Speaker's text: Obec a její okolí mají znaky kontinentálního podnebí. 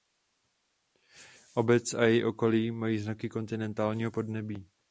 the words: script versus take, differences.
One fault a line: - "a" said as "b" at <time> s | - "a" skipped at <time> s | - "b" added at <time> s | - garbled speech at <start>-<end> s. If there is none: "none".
none